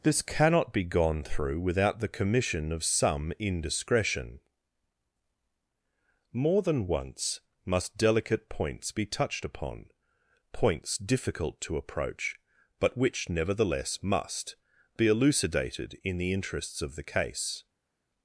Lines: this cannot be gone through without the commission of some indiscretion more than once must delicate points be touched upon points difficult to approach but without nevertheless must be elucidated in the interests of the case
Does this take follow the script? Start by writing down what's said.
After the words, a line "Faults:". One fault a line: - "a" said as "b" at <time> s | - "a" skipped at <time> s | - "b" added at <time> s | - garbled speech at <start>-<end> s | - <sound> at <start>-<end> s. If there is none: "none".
this cannot be gone through without the commission of some indiscretion more than once must delicate points be touched upon points difficult to approach but which nevertheless must be elucidated in the interests of the case
Faults:
- "without" said as "which" at 13.0 s